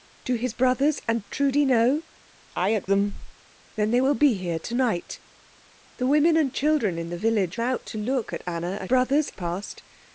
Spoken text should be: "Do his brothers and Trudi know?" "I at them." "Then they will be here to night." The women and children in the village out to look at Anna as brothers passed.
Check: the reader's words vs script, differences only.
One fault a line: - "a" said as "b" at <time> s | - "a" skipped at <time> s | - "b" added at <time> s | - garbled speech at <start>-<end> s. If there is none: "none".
none